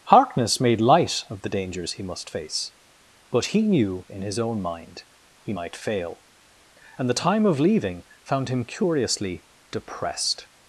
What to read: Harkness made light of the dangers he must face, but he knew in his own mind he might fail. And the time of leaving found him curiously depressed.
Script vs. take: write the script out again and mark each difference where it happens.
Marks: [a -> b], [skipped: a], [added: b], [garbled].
Harkness made light of the dangers he must face, but he knew in his own mind he might fail. And the time of leaving found him curiously depressed.